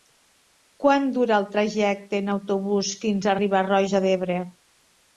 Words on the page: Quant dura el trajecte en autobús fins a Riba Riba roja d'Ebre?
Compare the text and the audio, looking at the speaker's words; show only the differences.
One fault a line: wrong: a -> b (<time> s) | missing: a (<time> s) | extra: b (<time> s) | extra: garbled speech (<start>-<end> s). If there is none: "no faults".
missing: Riba (3.7 s)